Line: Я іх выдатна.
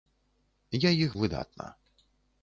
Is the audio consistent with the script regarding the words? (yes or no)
yes